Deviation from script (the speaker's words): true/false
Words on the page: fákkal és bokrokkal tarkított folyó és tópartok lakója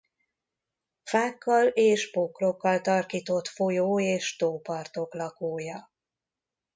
false